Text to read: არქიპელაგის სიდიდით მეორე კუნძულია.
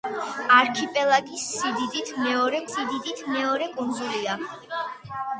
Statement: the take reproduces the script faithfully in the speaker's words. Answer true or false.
false